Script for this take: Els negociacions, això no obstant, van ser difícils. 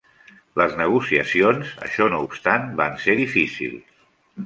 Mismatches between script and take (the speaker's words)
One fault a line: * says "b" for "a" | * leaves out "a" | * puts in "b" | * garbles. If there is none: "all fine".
* says "Les" for "Els"